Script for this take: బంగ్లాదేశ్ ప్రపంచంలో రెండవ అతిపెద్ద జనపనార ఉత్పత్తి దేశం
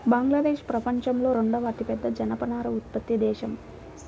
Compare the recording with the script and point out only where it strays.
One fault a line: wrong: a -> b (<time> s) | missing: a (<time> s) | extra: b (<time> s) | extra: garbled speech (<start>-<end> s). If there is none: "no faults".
no faults